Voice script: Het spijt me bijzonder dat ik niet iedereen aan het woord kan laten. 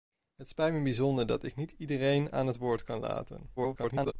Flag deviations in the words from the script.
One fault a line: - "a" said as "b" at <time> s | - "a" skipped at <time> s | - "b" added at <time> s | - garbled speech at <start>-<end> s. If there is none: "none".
- garbled speech at 3.6-4.1 s